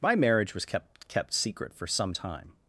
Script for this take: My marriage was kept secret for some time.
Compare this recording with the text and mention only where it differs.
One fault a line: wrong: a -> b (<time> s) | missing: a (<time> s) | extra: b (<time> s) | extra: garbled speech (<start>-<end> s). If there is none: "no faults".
extra: kept (1.1 s)